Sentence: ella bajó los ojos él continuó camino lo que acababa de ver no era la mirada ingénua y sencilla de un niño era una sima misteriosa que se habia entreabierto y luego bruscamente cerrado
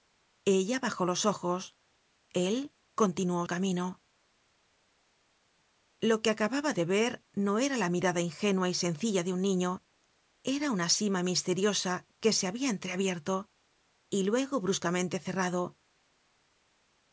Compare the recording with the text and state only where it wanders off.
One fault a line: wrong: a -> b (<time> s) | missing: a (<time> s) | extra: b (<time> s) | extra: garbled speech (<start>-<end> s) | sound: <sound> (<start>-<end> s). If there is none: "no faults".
no faults